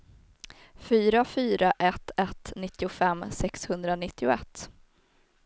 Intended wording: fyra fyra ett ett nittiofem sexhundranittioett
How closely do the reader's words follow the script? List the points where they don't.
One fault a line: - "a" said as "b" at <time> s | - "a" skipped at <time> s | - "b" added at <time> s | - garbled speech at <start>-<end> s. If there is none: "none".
none